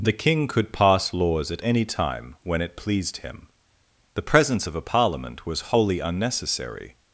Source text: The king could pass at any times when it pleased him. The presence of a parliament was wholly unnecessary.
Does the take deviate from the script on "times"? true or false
true